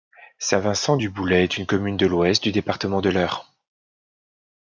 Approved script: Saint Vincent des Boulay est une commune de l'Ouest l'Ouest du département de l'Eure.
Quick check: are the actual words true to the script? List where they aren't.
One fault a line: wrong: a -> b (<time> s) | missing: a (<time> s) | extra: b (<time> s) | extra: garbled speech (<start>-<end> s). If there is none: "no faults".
wrong: des -> du (1.0 s)
missing: l'Ouest (2.4 s)